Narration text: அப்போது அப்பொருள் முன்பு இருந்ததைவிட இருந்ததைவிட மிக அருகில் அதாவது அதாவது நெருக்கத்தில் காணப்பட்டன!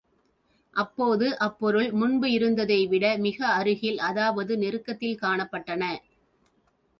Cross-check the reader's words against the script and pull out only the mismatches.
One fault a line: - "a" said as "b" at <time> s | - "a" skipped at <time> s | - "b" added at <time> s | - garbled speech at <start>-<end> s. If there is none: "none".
- "இருந்ததைவிட" skipped at 3.0 s
- "அதாவது" skipped at 4.5 s